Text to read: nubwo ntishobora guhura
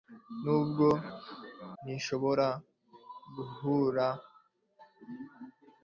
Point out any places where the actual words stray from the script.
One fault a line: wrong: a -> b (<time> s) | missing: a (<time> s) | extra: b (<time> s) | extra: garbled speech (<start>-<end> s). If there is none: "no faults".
no faults